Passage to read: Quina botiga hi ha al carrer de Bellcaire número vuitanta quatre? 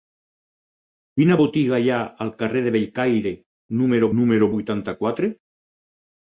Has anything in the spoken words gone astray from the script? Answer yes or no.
yes